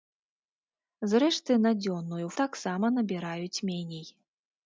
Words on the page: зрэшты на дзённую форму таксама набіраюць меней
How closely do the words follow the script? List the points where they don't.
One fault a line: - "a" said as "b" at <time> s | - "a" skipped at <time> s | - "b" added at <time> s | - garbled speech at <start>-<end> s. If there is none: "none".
- "форму" skipped at 2.3 s